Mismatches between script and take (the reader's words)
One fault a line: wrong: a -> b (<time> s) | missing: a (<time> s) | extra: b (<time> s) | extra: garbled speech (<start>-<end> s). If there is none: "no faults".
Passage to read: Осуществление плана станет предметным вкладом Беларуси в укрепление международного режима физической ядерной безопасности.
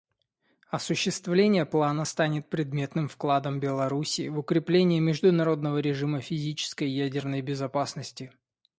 no faults